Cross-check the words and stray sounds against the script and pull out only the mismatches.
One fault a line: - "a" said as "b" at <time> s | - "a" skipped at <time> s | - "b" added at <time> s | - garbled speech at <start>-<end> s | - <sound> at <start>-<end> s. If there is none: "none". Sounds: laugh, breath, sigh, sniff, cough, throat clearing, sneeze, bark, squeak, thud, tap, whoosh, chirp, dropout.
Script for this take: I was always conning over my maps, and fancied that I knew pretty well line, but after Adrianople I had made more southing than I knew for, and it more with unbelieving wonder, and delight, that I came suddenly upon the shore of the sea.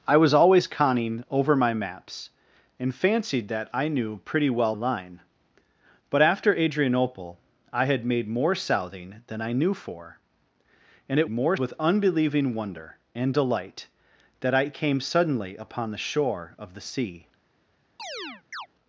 - chirp at 18.0-18.7 s